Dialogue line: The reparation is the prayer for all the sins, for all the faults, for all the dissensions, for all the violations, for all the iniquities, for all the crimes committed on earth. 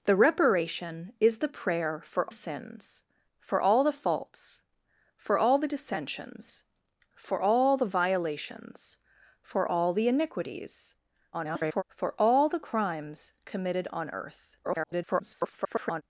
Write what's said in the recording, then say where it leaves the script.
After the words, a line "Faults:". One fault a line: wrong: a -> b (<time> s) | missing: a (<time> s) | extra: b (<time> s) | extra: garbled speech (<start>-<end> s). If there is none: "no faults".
The reparation is the prayer for sins, for all the faults, for all the dissensions, for all the violations, for all the iniquities, [garbled] for all the crimes committed on earth. [garbled]
Faults:
missing: all the (2.3 s)
extra: garbled speech (11.3-11.8 s)
extra: garbled speech (14.6-16.0 s)